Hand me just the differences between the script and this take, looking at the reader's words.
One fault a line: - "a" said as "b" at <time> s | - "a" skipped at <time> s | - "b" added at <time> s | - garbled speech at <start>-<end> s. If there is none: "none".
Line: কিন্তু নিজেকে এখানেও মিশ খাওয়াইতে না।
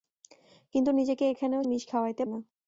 none